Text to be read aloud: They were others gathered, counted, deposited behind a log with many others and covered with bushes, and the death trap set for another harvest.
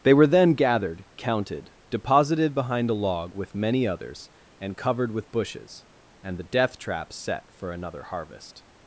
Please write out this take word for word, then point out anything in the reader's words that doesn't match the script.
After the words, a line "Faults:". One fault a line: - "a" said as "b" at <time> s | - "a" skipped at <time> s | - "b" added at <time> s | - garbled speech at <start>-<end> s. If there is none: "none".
They were then gathered, counted, deposited behind a log with many others and covered with bushes, and the death trap set for another harvest.
Faults:
- "others" said as "then" at 0.3 s